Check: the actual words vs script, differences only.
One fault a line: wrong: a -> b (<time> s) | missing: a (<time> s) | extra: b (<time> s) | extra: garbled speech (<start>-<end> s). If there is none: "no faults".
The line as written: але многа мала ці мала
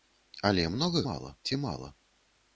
no faults